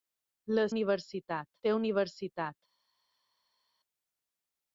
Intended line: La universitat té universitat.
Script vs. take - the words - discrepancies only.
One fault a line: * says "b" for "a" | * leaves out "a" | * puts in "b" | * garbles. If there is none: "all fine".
all fine